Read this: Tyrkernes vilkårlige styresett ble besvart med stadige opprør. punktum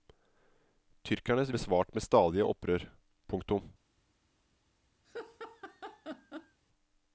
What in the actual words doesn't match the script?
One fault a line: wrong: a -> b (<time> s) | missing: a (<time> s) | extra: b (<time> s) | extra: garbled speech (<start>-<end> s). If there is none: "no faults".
missing: vilkårlige styresett ble (1.5 s)